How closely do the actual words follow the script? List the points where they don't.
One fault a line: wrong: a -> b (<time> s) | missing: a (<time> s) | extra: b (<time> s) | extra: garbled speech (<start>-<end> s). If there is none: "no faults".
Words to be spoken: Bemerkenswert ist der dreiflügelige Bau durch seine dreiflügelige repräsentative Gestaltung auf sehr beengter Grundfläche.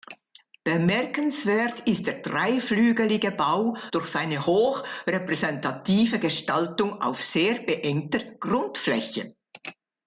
wrong: dreiflügelige -> hoch (4.4 s)